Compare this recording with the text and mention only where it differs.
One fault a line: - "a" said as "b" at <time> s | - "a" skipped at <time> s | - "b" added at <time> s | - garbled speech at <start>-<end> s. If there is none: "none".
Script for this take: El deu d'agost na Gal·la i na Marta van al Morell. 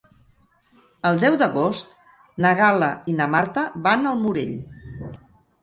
none